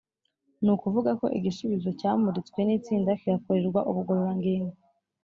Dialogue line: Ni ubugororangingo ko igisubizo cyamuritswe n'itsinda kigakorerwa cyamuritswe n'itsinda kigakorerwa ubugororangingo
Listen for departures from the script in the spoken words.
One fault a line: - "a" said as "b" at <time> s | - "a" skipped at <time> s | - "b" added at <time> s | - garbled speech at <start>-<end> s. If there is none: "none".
- "ubugororangingo" said as "ukuvuga" at 0.8 s
- "cyamuritswe n'itsinda kigakorerwa" skipped at 3.8 s